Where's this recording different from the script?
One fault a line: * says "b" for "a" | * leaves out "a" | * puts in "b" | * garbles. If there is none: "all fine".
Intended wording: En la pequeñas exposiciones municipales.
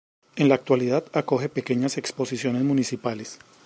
* puts in "actualidad acoge"